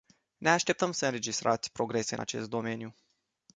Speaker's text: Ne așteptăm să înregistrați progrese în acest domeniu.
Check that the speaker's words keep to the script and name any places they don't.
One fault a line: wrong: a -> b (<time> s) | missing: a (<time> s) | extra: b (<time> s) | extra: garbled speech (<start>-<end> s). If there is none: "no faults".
no faults